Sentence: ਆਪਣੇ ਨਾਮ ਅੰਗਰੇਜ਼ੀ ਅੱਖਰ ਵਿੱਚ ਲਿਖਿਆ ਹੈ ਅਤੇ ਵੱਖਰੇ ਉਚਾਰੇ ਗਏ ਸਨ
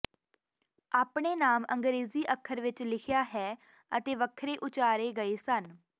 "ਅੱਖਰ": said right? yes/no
yes